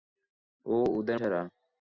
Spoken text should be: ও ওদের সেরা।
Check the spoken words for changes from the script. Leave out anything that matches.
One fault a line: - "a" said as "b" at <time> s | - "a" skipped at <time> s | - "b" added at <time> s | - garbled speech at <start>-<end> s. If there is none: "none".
none